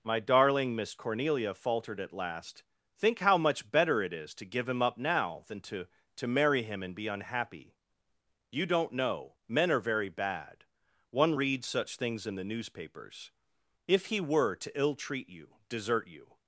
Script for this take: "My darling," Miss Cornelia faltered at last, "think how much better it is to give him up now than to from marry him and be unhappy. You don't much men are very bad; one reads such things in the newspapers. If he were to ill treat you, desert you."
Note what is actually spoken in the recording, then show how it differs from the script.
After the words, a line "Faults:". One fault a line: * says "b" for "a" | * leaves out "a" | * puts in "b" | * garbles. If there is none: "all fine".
"My darling," Miss Cornelia faltered at last, "think how much better it is to give him up now than to to marry him and be unhappy. You don't know men are very bad; one reads such things in the newspapers. If he were to ill treat you, desert you."
Faults:
* says "to" for "from"
* says "know" for "much"